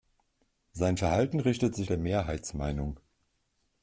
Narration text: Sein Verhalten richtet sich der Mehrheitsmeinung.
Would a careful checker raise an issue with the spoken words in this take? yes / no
no